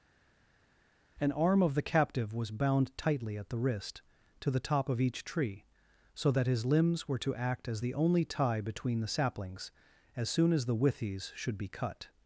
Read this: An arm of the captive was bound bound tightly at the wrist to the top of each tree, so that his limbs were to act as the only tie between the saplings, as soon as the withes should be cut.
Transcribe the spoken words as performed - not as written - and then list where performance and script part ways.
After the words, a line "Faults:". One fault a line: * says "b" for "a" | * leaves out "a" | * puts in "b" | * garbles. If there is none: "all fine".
An arm of the captive was bound tightly at the wrist to the top of each tree, so that his limbs were to act as the only tie between the saplings, as soon as the withes should be cut.
Faults:
* leaves out "bound"